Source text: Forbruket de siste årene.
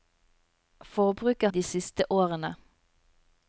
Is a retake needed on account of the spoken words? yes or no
no